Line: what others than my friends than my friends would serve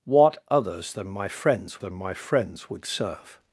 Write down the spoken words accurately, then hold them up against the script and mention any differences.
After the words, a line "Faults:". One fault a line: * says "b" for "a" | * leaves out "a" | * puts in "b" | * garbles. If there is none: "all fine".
what others than my friends than my friends would serve
Faults:
all fine